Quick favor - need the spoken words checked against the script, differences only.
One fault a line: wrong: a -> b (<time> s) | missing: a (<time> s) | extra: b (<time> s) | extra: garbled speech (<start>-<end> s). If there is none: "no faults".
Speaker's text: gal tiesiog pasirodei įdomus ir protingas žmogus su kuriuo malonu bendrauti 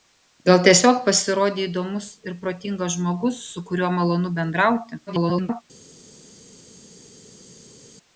extra: garbled speech (5.1-5.6 s)